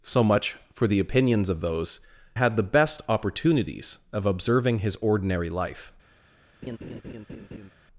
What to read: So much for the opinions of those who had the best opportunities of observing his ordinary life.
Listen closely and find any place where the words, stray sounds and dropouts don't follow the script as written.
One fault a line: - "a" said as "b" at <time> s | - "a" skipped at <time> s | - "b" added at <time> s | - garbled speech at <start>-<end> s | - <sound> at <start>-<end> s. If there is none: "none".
- "who" skipped at 2.0 s
- laugh at 6.6-7.7 s